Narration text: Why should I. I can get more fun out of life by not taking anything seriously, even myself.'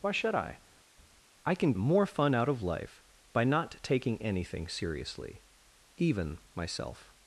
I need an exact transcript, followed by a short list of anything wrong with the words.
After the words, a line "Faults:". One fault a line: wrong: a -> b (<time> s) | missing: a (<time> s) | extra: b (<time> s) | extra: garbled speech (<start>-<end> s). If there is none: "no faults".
Why should I. I can more fun out of life by not taking anything seriously, even myself.'
Faults:
missing: get (1.7 s)